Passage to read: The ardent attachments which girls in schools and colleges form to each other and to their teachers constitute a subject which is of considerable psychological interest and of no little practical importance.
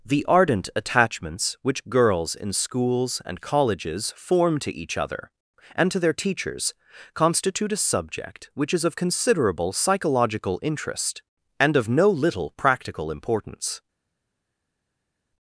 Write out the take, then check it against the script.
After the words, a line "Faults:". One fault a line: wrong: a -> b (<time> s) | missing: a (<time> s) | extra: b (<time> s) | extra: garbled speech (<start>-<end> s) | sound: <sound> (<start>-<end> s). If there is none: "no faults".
The ardent attachments which girls in schools and colleges form to each other and to their teachers constitute a subject which is of considerable psychological interest and of no little practical importance.
Faults:
no faults